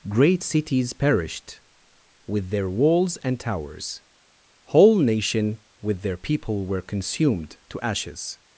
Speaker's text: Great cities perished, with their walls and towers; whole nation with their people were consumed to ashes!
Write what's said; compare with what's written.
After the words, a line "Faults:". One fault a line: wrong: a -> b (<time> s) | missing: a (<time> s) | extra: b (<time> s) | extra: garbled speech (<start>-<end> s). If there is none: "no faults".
Great cities perished, with their walls and towers; whole nation with their people were consumed to ashes!
Faults:
no faults